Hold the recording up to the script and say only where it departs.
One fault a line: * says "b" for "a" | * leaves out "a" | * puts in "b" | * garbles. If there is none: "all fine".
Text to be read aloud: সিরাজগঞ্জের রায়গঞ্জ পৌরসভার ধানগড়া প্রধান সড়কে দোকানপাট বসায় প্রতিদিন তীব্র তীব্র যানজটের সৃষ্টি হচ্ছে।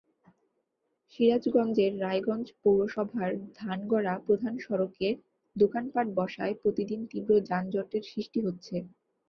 * leaves out "তীব্র"